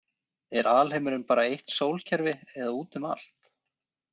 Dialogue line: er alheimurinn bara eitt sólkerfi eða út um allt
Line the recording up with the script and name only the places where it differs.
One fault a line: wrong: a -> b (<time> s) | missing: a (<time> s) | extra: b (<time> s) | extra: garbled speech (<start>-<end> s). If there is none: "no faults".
no faults